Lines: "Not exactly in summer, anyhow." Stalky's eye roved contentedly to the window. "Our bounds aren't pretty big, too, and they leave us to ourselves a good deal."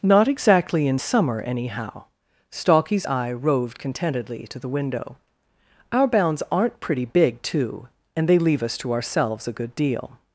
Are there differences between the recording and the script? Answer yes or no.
no